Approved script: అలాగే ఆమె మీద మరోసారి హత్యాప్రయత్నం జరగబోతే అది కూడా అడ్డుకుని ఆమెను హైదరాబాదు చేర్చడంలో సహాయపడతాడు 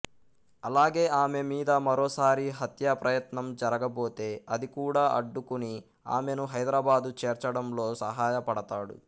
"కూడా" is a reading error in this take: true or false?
false